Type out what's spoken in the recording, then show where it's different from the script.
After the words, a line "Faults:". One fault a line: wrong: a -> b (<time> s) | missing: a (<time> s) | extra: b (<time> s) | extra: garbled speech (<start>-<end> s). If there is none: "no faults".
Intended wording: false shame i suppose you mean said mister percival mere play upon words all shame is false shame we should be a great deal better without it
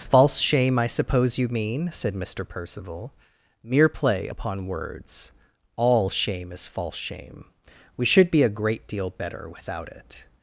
false shame i suppose you mean said mister percival mere play upon words all shame is false shame we should be a great deal better without it
Faults:
no faults